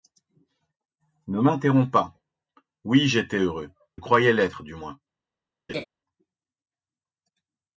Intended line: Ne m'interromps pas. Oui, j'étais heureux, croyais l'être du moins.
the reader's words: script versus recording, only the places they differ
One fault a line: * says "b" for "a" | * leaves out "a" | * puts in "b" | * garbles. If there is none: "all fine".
all fine